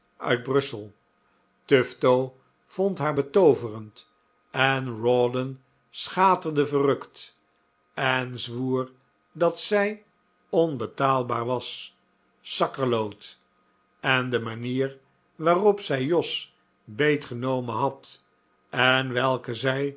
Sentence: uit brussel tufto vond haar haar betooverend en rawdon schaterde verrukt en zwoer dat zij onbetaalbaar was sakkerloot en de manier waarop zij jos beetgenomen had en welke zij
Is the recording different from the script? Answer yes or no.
yes